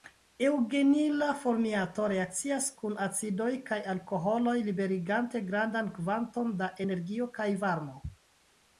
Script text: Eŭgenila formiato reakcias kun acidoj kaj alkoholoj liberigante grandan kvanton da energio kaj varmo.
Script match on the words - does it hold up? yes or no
yes